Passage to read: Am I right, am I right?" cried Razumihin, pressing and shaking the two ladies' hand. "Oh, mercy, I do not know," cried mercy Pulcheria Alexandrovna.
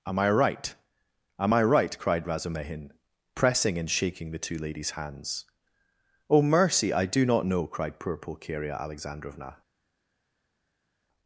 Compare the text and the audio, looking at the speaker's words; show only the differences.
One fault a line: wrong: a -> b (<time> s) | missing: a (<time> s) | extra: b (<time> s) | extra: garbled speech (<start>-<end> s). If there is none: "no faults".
wrong: hand -> hands (4.9 s)
wrong: mercy -> poor (8.0 s)